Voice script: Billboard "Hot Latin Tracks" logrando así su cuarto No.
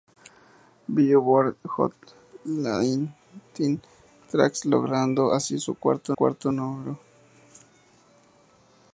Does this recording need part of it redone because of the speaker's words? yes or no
yes